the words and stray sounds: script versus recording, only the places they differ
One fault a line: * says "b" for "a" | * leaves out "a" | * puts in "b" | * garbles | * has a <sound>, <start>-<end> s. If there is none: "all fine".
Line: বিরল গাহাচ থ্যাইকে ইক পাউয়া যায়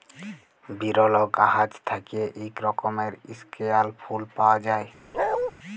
* puts in "রকমের ইস্কেয়াল ফুল"
* has a bark, 5.1-5.5 s